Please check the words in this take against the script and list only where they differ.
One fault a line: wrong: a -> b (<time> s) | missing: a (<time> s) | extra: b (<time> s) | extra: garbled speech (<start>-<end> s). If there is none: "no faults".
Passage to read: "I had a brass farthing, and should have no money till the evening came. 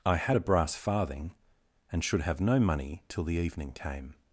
no faults